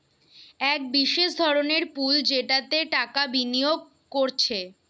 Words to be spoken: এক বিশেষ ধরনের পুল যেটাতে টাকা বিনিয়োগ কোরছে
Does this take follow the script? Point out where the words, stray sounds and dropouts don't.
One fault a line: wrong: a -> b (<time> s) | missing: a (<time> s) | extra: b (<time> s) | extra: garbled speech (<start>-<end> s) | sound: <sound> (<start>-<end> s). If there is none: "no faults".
no faults